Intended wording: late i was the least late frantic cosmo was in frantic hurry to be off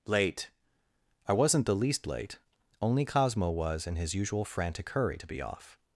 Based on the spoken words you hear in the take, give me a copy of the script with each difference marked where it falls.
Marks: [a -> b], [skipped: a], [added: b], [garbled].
late i [was -> wasn't] the least late [frantic -> only] cosmo was in [added: his usual] frantic hurry to be off